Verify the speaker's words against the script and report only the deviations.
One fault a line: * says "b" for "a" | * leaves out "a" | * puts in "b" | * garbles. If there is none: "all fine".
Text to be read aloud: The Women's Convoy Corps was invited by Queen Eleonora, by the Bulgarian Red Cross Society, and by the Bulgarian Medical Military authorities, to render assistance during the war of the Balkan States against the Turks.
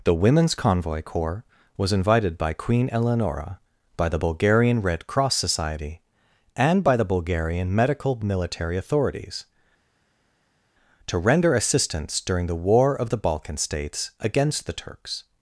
all fine